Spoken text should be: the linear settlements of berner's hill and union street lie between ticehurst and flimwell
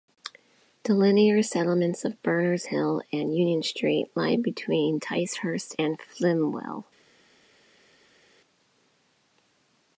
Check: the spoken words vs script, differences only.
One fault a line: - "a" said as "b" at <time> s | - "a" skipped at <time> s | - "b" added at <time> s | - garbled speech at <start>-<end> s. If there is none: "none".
none